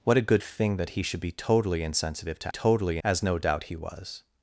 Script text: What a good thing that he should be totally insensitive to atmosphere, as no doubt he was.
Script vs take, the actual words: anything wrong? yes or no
yes